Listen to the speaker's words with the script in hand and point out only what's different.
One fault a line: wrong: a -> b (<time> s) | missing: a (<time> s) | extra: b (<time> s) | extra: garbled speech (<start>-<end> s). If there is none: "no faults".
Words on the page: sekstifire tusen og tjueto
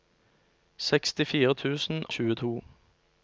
no faults